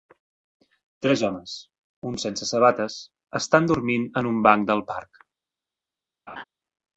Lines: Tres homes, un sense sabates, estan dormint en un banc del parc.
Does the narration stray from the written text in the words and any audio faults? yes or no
yes